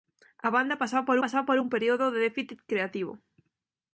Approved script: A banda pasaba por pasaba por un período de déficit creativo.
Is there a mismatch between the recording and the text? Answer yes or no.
no